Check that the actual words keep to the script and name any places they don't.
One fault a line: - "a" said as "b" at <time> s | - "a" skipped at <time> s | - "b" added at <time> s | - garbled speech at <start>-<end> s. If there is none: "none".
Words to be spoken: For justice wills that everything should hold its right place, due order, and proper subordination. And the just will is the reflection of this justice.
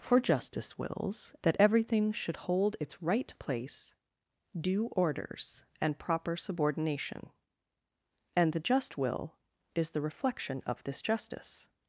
- "order" said as "orders" at 4.9 s